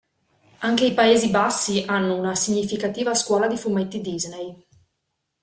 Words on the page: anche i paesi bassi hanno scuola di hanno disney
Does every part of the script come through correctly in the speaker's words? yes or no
no